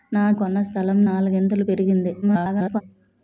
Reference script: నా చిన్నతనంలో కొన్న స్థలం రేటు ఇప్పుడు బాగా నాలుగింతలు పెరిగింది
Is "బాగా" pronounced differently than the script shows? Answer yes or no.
yes